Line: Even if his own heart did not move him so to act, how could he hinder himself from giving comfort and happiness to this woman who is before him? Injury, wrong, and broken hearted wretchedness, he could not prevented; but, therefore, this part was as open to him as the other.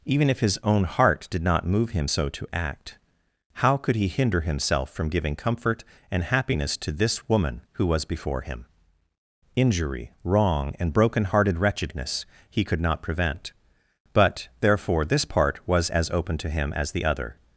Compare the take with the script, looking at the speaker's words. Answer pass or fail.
fail